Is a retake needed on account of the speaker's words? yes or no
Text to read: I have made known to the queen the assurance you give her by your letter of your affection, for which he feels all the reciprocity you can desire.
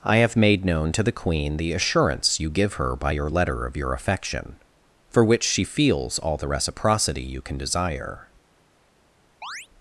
yes